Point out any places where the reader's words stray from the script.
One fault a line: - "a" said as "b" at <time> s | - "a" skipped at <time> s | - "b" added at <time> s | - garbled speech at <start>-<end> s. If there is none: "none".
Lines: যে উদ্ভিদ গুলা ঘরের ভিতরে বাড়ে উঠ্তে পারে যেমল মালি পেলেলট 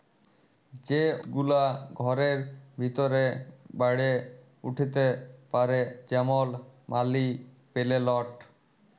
- "উদ্ভিদ" skipped at 1.0 s